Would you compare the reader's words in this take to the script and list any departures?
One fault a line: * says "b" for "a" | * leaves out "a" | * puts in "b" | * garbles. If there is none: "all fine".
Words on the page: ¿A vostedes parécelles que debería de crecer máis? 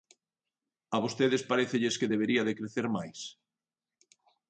all fine